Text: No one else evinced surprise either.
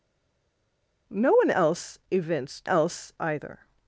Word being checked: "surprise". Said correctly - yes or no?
no